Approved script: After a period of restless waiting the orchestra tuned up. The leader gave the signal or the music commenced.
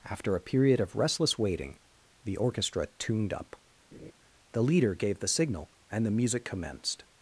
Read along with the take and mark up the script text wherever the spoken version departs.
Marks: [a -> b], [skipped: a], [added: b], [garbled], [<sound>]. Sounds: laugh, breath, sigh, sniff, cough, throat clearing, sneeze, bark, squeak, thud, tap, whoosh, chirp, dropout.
After a period of restless waiting the orchestra tuned up. [laugh] The leader gave the signal [or -> and] the music commenced.